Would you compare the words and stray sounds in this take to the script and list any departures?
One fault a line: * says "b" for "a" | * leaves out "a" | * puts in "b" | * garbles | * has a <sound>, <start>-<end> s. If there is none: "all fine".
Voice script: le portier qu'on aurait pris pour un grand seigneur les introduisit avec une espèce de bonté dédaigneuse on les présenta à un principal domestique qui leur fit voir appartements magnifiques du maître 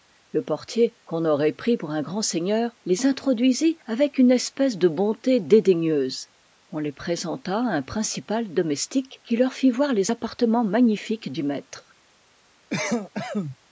* puts in "les"
* has a cough, 12.7-13.6 s